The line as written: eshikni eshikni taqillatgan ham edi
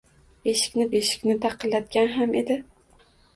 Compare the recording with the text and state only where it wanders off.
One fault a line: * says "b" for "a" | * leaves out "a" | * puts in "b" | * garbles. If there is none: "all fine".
all fine